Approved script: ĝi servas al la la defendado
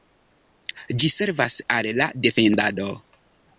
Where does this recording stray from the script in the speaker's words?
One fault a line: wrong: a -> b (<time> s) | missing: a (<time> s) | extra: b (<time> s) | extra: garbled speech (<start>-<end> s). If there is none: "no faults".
missing: la (2.1 s)